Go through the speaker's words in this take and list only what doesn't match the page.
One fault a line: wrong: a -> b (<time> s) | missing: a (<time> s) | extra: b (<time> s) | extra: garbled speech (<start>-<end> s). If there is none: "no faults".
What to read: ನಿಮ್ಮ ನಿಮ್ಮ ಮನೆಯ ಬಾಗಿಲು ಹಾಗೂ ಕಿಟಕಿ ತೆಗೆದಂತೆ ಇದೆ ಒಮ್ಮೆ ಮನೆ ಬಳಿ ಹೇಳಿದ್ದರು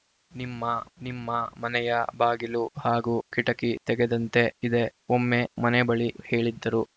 no faults